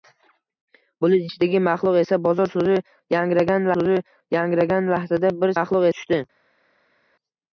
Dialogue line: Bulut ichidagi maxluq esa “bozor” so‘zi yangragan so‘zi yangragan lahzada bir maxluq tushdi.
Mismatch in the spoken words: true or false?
false